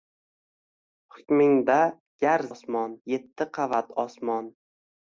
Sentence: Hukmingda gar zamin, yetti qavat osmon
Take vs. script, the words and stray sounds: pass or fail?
fail